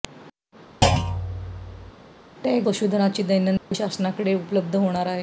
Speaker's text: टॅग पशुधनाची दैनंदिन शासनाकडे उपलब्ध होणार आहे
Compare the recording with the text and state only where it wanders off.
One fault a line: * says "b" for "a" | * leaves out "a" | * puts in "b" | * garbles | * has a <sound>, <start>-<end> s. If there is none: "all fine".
* has a thud, 0.8-1.9 s
* has a dropout, 3.6-3.7 s